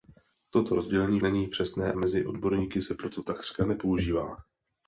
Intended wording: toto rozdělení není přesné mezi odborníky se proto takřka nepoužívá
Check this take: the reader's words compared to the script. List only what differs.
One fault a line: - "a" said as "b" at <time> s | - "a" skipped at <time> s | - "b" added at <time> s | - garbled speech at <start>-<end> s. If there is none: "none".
none